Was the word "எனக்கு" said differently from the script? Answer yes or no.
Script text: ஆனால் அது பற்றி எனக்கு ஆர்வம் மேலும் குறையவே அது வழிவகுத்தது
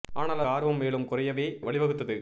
yes